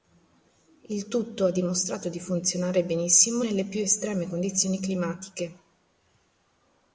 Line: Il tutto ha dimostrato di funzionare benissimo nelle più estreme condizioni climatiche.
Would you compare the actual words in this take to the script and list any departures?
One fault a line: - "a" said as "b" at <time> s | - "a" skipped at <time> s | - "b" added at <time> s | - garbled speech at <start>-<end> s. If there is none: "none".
none